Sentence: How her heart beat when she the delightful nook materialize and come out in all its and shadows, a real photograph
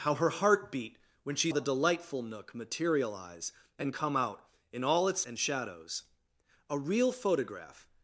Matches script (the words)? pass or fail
pass